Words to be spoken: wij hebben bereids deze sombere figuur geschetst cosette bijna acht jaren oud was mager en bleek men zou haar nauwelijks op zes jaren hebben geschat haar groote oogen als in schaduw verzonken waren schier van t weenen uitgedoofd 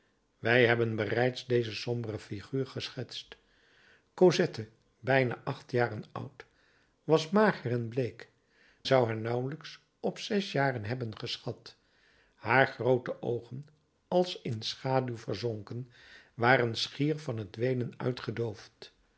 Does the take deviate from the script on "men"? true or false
true